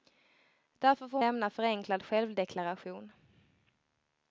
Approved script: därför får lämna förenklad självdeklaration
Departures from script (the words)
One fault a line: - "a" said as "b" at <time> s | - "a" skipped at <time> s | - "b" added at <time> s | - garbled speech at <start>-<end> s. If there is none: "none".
none